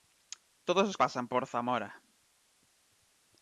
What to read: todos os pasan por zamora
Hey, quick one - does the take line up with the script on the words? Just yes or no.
yes